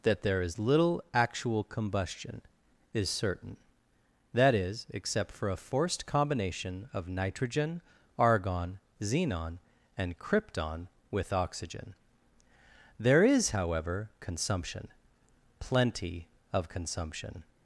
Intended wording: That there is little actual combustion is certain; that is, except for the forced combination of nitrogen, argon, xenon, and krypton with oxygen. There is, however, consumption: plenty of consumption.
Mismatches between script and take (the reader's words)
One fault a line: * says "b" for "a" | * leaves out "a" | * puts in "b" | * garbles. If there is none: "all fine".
* says "a" for "the"